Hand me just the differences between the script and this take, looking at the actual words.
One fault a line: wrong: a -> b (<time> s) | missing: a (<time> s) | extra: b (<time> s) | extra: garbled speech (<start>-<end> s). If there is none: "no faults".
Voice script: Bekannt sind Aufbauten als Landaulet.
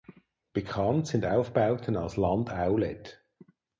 no faults